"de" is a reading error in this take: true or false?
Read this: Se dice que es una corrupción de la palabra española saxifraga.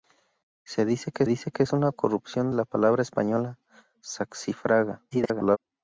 true